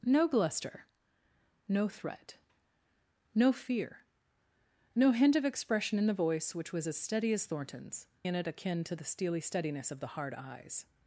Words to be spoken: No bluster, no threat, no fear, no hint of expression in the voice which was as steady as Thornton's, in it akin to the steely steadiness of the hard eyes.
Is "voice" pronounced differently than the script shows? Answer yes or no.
no